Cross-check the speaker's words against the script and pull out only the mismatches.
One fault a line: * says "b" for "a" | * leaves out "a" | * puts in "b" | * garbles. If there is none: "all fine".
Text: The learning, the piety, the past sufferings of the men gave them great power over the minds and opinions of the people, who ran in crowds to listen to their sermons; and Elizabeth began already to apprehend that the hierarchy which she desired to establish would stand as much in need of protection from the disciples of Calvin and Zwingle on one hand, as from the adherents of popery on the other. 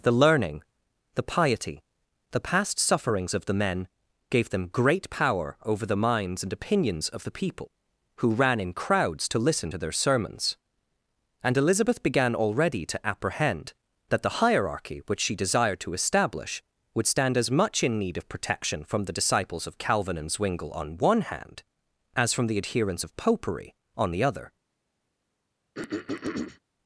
all fine